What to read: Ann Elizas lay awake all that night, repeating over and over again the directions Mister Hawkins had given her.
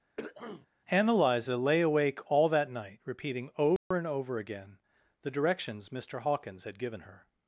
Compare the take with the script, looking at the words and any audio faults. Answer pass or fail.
fail